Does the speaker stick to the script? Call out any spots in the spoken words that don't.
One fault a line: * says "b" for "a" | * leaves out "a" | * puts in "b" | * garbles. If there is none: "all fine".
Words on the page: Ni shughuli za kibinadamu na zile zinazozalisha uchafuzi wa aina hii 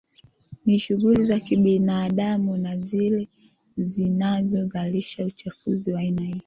all fine